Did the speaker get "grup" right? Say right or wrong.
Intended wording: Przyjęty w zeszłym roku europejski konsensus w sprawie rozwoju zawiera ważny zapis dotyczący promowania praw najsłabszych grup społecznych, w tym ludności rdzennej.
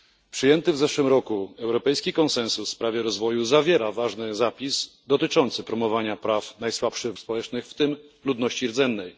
wrong